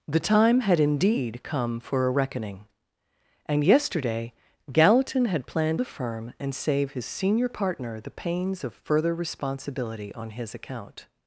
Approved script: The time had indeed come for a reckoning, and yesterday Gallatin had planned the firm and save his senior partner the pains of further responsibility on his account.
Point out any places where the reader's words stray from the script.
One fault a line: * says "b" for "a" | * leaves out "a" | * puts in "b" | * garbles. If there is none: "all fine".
all fine